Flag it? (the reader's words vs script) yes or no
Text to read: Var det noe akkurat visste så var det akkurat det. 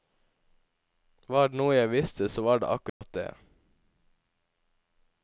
yes